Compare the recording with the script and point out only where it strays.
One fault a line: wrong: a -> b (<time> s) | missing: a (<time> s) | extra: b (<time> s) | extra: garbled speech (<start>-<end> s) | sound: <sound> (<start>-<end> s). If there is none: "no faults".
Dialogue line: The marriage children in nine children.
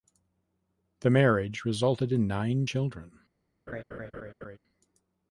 wrong: children -> resulted (1.6 s)
sound: laugh (3.7-4.6 s)